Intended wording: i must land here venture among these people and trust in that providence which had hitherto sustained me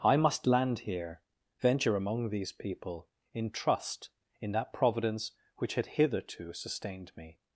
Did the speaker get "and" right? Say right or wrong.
wrong